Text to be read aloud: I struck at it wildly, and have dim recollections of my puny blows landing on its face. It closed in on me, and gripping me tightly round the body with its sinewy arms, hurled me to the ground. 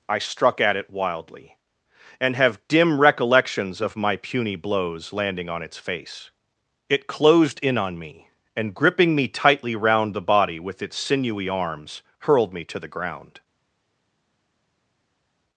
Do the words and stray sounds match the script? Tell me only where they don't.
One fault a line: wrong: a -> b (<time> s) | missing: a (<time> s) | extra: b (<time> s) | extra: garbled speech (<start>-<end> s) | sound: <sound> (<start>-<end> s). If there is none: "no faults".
no faults